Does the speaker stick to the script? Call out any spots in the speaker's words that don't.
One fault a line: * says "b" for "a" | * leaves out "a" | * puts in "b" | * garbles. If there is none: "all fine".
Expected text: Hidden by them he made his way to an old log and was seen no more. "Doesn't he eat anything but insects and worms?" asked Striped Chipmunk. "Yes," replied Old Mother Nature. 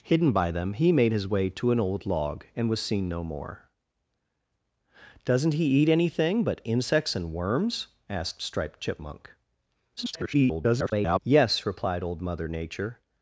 * garbles